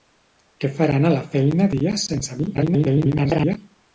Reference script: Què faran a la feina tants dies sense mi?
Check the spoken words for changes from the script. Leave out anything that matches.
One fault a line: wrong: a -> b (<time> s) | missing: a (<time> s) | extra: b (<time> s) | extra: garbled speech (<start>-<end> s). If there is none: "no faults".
missing: tants (1.7 s)
extra: garbled speech (2.5-3.6 s)